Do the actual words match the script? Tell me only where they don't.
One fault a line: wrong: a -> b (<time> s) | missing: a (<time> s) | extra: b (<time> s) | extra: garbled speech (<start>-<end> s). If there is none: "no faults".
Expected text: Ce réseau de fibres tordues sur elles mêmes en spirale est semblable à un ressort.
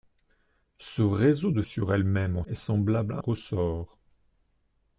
missing: fibres tordues (1.6 s)
missing: spirale (2.4 s)
missing: un (3.2 s)